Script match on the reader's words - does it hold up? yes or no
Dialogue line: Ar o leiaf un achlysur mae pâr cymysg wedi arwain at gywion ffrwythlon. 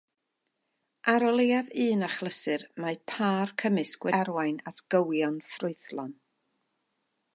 no